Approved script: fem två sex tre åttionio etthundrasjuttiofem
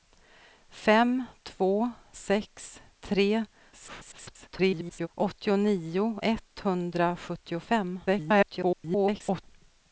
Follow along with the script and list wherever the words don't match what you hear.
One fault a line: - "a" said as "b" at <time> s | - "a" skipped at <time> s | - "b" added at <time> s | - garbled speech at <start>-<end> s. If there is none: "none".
- garbled speech at 3.7-5.1 s
- garbled speech at 8.1-9.4 s